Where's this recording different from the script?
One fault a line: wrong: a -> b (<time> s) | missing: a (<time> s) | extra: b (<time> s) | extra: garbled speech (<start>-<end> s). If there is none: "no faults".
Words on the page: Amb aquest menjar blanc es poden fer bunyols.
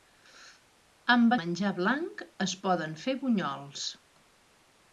missing: aquest (1.4 s)